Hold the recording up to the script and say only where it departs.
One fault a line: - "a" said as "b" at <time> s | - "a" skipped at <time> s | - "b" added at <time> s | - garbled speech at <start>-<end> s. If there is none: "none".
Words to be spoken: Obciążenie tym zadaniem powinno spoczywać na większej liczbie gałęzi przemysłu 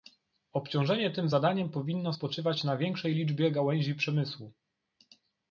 none